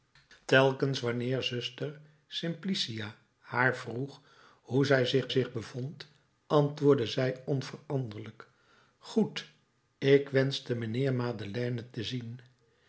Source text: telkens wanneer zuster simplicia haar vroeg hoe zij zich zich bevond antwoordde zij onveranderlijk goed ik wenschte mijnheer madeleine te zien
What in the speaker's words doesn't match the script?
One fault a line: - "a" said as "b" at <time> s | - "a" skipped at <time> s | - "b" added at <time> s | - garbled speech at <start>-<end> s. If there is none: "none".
none